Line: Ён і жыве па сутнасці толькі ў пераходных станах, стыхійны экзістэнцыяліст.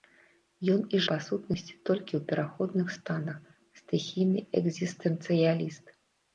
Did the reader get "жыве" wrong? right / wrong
wrong